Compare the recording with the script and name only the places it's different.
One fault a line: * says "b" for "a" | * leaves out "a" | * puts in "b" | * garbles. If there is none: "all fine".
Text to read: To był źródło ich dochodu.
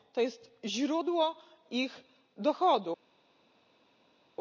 * says "jest" for "był"